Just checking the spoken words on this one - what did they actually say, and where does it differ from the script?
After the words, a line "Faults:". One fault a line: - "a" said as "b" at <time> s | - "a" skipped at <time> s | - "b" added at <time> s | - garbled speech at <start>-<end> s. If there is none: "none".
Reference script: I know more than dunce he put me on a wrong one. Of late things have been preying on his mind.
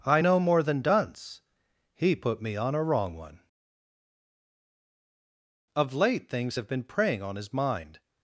I know more than dunce he put me on a wrong one. Of late things have been preying on his mind.
Faults:
none